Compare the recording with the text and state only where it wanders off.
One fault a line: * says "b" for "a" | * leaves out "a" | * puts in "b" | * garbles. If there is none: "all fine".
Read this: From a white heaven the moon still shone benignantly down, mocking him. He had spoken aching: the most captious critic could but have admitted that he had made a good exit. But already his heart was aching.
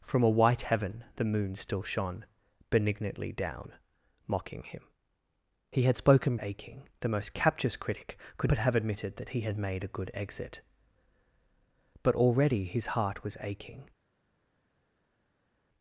all fine